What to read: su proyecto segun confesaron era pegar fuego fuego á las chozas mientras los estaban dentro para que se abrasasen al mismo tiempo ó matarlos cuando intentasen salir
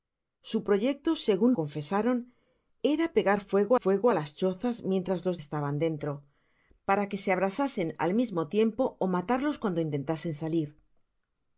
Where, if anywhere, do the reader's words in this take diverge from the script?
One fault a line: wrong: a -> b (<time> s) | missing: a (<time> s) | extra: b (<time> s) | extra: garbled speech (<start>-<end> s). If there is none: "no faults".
no faults